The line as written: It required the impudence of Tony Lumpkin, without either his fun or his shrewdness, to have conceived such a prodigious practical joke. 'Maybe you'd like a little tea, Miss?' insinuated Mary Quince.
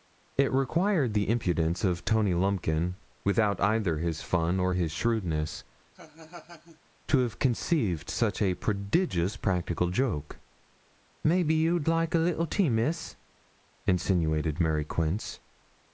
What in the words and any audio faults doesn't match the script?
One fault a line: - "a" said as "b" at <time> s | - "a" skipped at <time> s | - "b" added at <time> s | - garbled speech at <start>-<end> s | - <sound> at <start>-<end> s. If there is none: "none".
- laugh at 5.9-6.8 s